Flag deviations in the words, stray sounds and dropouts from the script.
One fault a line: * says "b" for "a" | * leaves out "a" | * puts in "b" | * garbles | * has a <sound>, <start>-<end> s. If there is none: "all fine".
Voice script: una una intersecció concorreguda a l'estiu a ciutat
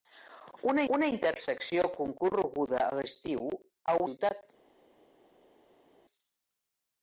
all fine